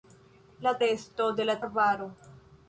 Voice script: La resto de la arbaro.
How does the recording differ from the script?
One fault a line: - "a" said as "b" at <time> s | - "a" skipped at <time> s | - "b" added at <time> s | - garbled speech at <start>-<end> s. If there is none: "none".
none